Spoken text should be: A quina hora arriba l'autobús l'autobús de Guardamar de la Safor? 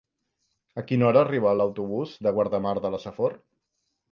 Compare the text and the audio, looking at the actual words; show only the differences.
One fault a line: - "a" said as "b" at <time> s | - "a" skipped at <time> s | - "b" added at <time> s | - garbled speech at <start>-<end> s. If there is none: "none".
- "l'autobús" skipped at 2.1 s